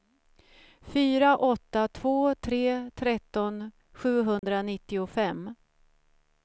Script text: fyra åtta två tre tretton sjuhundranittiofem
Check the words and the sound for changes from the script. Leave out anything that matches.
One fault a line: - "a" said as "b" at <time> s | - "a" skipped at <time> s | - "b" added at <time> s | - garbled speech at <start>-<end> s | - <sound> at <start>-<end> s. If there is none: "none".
- dropout at 4.4-4.4 s